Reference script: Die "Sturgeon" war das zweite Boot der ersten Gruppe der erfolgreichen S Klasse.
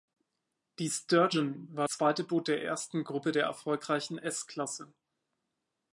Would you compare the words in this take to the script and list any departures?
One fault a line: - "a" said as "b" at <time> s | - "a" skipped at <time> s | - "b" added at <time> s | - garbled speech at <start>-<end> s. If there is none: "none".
- "das" skipped at 1.9 s